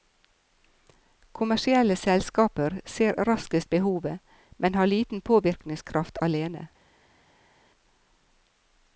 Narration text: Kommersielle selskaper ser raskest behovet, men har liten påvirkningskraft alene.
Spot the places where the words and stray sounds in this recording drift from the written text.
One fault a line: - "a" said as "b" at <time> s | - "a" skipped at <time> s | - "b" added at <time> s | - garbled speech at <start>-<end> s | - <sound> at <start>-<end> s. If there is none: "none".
none